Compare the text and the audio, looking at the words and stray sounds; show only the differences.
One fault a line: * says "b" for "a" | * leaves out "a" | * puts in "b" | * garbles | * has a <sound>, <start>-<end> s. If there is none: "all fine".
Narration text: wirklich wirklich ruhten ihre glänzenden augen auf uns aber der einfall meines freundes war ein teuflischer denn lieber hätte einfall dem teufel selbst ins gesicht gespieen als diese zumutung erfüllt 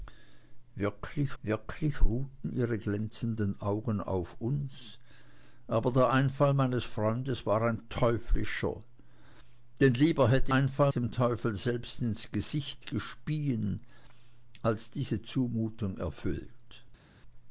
all fine